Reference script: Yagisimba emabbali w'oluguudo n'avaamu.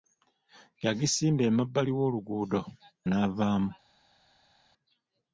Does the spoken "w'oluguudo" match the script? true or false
true